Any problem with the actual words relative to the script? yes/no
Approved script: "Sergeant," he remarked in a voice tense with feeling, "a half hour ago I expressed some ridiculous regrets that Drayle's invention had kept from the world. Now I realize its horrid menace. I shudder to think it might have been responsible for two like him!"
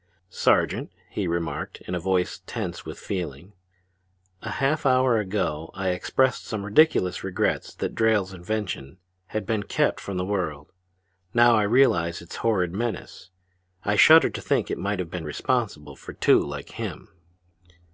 yes